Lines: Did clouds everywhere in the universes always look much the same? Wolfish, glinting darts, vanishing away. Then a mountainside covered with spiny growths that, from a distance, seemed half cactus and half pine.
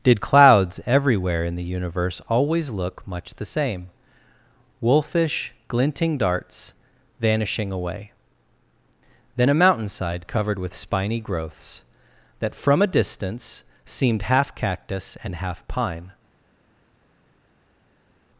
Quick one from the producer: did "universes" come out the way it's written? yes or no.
no